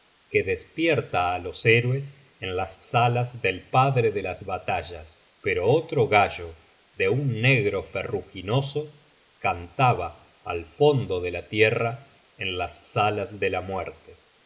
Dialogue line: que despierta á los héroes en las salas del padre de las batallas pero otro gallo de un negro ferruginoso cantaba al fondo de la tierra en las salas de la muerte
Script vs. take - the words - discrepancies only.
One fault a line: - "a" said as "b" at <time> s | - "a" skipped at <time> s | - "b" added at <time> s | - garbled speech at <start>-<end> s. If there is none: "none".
none